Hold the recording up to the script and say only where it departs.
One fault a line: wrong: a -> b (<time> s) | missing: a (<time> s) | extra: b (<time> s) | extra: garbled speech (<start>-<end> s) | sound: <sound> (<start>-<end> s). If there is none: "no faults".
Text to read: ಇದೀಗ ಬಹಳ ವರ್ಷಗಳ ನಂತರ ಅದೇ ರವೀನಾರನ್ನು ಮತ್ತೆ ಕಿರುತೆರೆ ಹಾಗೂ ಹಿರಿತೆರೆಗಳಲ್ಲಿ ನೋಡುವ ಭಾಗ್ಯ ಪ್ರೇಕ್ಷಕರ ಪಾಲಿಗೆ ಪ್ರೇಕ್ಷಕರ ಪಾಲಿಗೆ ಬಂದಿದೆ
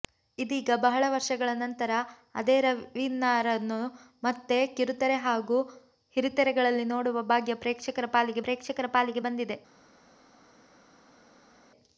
no faults